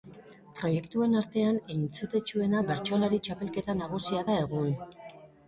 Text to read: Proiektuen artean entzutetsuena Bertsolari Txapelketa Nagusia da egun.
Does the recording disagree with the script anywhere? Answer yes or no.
no